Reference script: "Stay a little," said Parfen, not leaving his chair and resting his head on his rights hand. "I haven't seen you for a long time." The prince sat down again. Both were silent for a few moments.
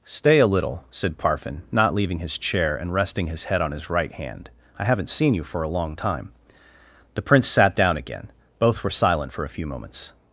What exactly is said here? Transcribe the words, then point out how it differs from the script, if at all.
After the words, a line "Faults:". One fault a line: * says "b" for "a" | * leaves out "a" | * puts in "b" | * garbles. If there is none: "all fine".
"Stay a little," said Parfen, not leaving his chair and resting his head on his right hand. "I haven't seen you for a long time." The prince sat down again. Both were silent for a few moments.
Faults:
* says "right" for "rights"